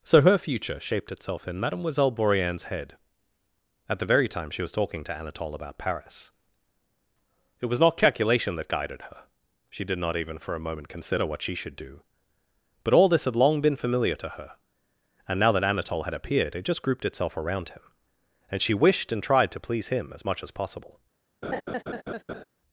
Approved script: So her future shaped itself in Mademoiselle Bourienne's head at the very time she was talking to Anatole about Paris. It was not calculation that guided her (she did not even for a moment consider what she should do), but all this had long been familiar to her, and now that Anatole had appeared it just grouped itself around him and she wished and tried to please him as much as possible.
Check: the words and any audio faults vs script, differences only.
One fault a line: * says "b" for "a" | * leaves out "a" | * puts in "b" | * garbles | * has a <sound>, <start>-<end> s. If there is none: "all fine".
* has a laugh, 21.4-22.4 s